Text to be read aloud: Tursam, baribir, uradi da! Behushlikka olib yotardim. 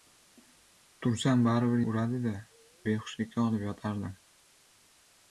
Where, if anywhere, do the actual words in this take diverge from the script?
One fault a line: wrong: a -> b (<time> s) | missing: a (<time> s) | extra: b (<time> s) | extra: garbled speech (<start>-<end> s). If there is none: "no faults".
no faults